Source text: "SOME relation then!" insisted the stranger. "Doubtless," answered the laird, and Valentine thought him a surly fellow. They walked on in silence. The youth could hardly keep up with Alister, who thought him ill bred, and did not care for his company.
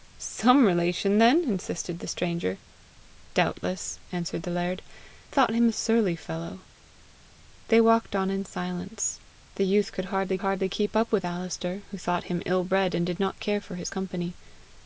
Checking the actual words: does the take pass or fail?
fail